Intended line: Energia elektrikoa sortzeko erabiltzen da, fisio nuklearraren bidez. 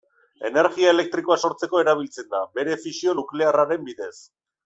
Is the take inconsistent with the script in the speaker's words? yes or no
yes